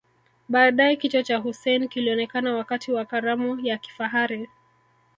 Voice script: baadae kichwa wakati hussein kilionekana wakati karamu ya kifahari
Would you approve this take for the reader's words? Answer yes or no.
no